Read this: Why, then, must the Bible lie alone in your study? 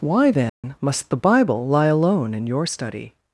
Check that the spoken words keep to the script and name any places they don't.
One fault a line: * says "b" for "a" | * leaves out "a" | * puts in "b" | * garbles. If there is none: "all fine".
all fine